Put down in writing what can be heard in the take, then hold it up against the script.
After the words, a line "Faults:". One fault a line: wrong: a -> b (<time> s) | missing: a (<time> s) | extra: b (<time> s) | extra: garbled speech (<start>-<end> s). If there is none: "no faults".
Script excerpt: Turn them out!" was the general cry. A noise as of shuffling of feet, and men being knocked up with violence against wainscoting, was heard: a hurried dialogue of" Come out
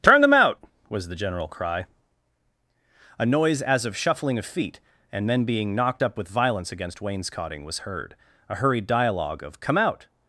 Turn them out!" was the general cry. A noise as of shuffling of feet, and men being knocked up with violence against wainscoting, was heard: a hurried dialogue of" Come out
Faults:
no faults